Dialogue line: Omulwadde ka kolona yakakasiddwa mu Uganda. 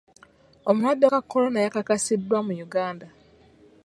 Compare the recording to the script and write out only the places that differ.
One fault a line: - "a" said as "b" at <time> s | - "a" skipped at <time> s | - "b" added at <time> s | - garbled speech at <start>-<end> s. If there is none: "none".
none